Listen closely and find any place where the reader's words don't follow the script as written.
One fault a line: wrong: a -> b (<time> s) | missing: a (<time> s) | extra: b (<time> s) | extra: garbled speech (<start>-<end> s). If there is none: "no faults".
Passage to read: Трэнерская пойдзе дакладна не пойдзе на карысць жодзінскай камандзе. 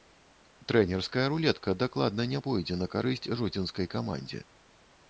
wrong: пойдзе -> рулетка (1.3 s)